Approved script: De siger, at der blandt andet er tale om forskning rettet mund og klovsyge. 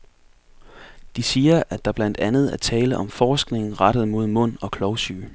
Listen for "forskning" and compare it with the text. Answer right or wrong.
right